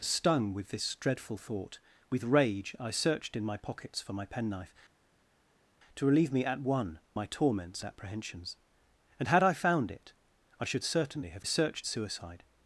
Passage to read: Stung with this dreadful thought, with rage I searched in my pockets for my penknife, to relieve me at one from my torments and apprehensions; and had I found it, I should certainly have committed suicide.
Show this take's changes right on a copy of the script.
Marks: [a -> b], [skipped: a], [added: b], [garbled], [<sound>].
Stung with this dreadful thought, with rage I searched in my pockets for my penknife, to relieve me at one [skipped: from] my torments [skipped: and] apprehensions; and had I found it, I should certainly have [committed -> searched] suicide.